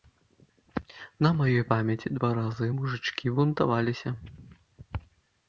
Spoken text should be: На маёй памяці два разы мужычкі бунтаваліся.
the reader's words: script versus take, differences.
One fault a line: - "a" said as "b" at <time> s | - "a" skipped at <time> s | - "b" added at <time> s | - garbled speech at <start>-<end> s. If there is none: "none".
none